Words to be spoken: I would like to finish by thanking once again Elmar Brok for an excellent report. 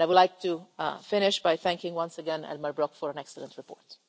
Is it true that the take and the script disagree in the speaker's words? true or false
false